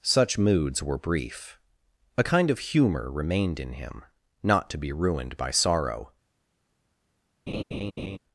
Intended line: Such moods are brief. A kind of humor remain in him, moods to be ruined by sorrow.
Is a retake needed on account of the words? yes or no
yes